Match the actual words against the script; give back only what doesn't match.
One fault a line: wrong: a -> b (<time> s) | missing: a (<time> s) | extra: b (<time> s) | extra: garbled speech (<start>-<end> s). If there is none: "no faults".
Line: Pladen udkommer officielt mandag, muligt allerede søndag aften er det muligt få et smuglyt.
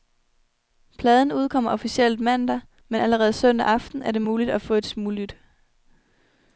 wrong: muligt -> men (2.9 s)
extra: at (4.5 s)